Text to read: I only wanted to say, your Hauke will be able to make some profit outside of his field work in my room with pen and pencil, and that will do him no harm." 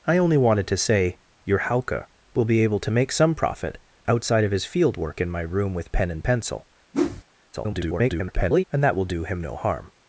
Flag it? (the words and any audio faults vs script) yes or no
yes